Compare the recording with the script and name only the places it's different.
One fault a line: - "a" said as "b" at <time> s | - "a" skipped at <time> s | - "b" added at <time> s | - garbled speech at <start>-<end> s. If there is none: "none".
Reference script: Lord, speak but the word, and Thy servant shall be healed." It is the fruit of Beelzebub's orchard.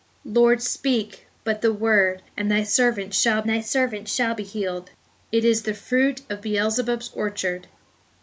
- "Thy servant shall" added at 3.5 s